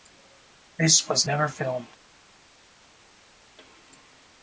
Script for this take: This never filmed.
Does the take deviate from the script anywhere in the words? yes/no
yes